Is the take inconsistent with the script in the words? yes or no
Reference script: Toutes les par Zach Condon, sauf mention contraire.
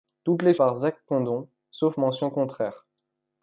no